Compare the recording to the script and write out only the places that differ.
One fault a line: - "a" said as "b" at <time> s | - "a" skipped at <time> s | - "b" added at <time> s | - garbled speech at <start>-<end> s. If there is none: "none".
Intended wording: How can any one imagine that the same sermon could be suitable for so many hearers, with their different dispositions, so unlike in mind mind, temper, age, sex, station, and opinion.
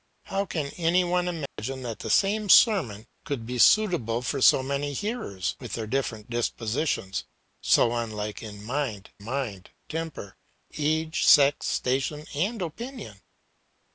none